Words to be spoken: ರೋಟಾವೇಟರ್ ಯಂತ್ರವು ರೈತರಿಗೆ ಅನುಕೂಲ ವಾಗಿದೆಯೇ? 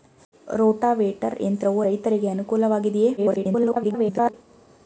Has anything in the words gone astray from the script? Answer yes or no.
yes